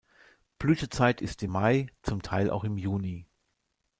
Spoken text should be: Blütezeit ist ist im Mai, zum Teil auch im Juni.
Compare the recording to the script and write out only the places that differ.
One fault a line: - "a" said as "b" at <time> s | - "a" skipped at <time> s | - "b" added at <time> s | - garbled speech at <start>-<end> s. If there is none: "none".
- "ist" skipped at 1.4 s